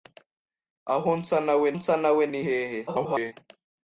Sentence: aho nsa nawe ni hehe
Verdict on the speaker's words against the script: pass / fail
fail